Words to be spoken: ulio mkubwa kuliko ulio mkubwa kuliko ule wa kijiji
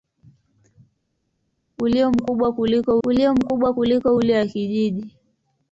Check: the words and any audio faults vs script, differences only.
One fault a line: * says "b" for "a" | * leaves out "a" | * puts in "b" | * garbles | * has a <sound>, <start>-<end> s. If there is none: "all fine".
all fine